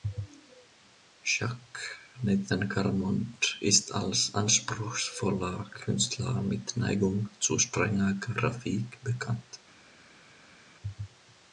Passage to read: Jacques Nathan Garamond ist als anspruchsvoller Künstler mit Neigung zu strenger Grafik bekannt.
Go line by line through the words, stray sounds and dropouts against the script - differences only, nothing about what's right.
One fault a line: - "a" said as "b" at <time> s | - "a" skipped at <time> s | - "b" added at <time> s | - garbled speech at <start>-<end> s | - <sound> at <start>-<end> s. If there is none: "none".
none